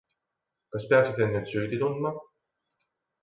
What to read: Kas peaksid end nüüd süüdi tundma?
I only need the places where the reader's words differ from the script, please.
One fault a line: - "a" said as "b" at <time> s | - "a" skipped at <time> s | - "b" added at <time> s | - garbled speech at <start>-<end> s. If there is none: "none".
none